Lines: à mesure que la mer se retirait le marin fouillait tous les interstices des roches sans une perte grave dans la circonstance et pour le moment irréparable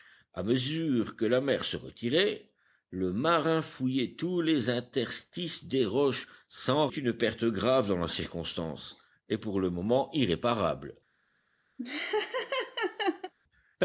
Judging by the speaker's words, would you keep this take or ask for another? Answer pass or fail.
pass